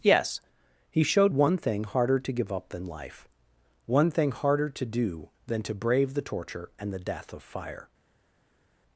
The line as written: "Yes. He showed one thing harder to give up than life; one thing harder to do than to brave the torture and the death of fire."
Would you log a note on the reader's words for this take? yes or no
no